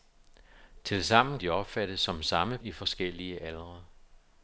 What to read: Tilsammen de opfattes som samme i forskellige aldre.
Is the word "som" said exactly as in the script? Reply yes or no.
yes